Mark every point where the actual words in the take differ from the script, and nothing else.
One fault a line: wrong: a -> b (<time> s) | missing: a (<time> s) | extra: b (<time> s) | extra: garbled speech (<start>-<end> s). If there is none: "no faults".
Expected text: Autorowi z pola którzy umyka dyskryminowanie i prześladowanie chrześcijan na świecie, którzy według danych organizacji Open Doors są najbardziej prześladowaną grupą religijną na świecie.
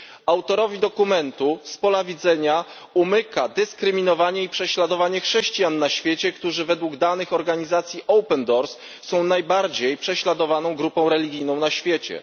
extra: dokumentu (0.8 s)
wrong: którzy -> widzenia (2.0 s)